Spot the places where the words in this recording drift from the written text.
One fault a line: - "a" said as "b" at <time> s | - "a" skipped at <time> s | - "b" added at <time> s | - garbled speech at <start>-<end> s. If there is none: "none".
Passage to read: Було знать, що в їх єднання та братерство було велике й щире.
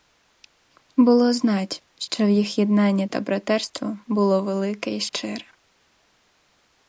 none